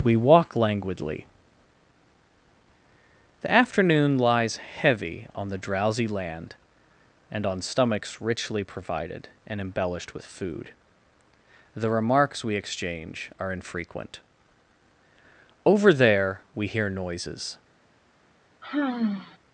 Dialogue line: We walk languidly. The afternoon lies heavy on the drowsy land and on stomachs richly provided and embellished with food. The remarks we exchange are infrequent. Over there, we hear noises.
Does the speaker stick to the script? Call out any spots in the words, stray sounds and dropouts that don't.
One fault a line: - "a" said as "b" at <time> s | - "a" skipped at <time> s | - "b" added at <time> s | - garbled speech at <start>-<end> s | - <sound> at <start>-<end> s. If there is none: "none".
- sigh at 18.6-19.4 s